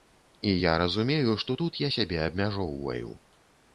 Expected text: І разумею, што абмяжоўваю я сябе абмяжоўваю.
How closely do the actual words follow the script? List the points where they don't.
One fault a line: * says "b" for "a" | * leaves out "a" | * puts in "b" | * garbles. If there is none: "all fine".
* puts in "я"
* says "тут" for "абмяжоўваю"